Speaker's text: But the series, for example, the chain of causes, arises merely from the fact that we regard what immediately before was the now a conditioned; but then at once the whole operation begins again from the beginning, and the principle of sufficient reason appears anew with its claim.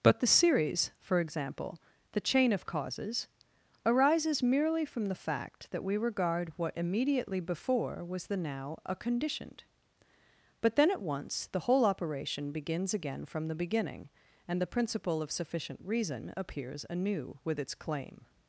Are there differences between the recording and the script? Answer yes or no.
no